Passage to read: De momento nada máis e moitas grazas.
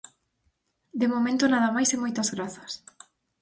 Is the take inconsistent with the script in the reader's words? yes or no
no